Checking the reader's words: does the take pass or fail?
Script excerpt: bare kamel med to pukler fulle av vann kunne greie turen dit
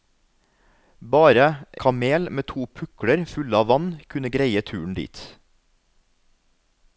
pass